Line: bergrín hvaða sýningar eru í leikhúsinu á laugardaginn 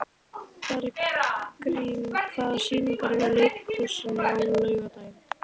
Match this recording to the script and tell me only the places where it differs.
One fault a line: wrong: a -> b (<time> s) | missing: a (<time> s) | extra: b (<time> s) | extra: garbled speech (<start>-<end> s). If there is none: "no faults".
no faults